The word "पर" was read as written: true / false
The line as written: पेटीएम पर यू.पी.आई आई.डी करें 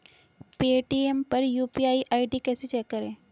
true